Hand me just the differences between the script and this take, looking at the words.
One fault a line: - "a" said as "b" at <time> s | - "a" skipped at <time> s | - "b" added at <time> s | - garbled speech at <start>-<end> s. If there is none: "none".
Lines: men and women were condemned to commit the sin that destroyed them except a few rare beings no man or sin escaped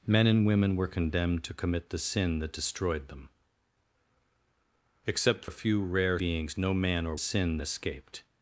none